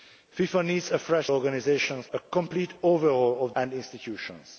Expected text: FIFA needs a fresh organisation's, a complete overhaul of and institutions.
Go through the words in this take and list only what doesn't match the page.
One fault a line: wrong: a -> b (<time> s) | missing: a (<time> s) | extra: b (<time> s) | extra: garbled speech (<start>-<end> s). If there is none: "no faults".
no faults